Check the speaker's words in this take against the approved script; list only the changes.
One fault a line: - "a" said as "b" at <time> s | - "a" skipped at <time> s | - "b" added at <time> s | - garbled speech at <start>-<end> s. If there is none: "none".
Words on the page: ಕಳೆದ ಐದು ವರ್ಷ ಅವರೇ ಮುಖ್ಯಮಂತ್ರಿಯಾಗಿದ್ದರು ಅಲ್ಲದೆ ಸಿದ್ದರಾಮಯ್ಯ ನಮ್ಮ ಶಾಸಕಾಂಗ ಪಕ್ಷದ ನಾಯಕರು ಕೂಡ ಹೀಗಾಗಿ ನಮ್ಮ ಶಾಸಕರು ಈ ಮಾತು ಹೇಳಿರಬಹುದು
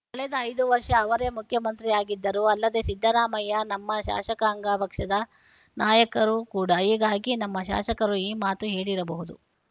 none